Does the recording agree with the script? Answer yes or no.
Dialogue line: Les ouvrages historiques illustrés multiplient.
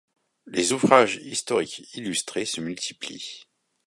no